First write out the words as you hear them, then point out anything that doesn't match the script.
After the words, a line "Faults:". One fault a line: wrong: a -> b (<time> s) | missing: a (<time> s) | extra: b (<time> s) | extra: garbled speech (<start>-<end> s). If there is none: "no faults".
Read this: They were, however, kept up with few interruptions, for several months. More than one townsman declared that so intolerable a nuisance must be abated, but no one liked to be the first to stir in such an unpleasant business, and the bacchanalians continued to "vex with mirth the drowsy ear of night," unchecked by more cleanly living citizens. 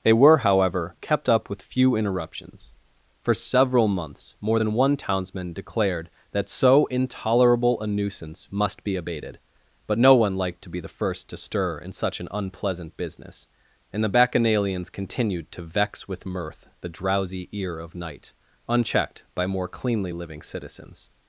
They were, however, kept up with few interruptions, for several months. More than one townsman declared that so intolerable a nuisance must be abated, but no one liked to be the first to stir in such an unpleasant business, and the bacchanalians continued to "vex with mirth the drowsy ear of night," unchecked by more cleanly living citizens.
Faults:
no faults